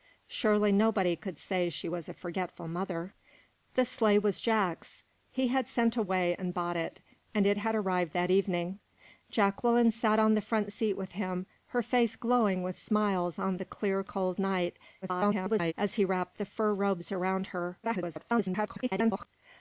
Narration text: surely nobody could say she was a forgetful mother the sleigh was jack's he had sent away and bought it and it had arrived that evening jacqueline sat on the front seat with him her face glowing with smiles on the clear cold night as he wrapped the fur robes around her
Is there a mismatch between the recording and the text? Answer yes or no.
yes